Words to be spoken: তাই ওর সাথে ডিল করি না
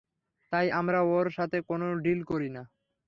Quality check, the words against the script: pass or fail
fail